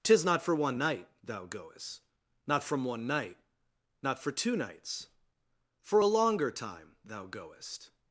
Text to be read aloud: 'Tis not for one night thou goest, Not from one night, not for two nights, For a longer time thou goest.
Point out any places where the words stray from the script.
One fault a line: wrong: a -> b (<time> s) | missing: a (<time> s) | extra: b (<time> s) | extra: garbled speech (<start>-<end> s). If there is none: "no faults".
no faults